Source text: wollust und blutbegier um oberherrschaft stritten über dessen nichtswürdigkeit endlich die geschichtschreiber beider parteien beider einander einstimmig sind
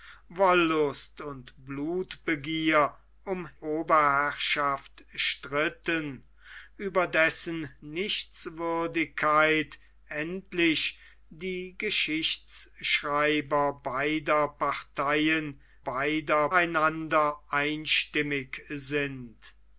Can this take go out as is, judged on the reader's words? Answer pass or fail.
pass